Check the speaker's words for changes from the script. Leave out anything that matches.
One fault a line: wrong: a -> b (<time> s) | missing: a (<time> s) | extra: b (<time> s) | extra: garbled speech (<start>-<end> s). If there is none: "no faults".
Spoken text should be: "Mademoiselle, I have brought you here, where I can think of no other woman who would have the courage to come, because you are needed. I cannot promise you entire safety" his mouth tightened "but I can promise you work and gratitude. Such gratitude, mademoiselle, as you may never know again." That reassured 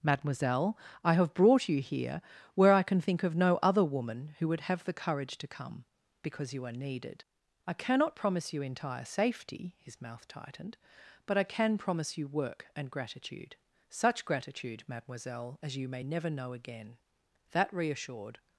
no faults